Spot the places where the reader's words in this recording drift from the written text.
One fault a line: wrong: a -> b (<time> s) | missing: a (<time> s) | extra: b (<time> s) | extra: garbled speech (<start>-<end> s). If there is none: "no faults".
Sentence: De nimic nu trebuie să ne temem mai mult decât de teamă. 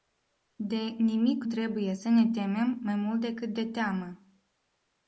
missing: nu (1.4 s)